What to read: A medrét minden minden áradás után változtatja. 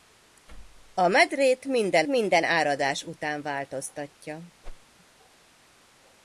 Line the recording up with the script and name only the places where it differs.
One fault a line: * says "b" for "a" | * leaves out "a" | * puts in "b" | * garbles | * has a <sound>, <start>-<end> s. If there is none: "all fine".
* has a whoosh, 4.6-4.9 s